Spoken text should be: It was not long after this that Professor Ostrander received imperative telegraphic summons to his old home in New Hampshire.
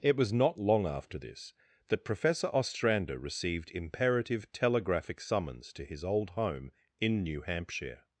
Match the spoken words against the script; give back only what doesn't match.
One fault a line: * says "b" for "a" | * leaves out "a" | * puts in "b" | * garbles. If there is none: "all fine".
all fine